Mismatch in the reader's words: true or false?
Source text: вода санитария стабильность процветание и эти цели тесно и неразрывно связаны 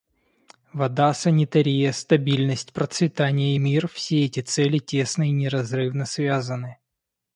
true